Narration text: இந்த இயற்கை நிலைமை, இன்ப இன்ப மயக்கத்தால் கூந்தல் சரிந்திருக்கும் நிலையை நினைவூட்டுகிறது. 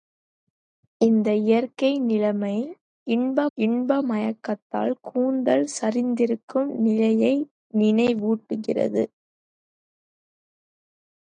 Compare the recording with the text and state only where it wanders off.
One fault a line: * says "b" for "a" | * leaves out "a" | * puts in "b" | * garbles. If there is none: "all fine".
all fine